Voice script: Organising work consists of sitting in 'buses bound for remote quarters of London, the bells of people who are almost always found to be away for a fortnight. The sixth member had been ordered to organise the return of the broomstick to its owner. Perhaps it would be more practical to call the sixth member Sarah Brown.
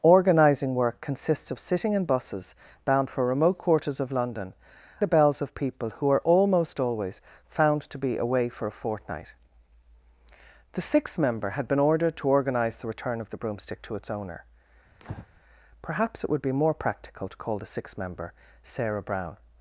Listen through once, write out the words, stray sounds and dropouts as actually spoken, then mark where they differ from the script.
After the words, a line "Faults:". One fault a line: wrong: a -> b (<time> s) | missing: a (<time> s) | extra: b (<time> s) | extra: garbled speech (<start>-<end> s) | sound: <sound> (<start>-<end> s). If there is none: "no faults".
Organising work consists of sitting in 'buses bound for remote quarters of London, the bells of people who are almost always found to be away for a fortnight. The sixth member had been ordered to organise the return of the broomstick to its owner. Perhaps it would be more practical to call the sixth member Sarah Brown.
Faults:
sound: breath (15.0-15.3 s)